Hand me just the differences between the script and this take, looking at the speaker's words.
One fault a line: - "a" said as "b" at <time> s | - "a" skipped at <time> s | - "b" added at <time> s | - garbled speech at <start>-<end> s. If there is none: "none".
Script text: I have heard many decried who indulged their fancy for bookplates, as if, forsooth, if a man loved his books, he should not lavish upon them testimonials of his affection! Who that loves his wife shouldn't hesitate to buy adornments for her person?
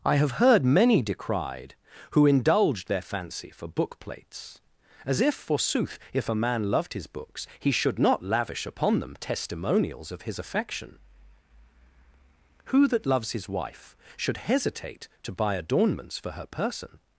- "shouldn't" said as "should" at 14.2 s